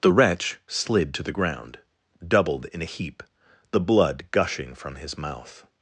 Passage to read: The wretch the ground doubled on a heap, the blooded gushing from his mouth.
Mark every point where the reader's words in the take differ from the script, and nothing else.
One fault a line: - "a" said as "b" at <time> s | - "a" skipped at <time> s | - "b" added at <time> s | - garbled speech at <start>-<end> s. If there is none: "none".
- "slid to" added at 0.7 s
- "on" said as "in" at 2.7 s
- "blooded" said as "blood" at 3.8 s